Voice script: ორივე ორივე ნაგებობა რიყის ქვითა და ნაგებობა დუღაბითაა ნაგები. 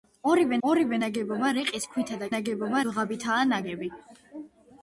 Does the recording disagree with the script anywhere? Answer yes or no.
no